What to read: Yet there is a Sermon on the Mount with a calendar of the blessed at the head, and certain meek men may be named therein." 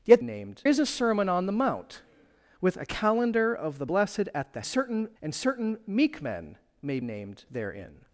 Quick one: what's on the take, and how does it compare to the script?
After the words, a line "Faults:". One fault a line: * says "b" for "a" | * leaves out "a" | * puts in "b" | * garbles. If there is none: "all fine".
Yet named is a Sermon on the Mount with a calendar of the blessed at the certain, and certain meek men may named therein."
Faults:
* says "named" for "there"
* says "certain" for "head"
* leaves out "be"